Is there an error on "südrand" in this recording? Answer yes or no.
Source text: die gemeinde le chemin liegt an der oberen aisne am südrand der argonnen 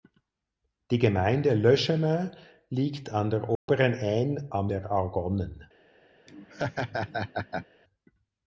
yes